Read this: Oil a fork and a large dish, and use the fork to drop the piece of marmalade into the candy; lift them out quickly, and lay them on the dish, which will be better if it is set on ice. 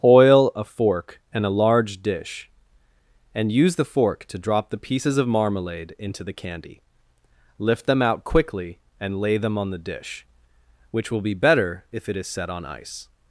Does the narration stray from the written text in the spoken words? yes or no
yes